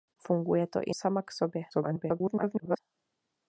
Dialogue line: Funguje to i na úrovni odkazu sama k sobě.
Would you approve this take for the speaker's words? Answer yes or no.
no